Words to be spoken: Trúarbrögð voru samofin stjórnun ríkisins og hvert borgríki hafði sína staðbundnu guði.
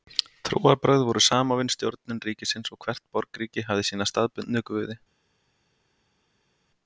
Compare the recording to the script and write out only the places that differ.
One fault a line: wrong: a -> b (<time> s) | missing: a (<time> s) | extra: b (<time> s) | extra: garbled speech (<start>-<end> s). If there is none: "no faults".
no faults